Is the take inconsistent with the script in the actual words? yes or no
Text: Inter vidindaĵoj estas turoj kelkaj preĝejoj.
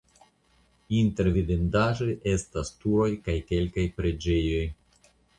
yes